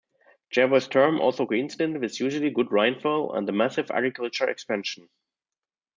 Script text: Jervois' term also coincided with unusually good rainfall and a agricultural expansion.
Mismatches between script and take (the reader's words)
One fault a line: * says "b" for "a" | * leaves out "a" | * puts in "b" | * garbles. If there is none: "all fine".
* puts in "massive"